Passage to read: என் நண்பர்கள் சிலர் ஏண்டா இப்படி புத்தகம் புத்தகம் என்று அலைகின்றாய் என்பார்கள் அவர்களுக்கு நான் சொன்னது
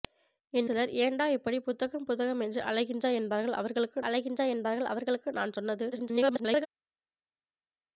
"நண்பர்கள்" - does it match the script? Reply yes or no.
no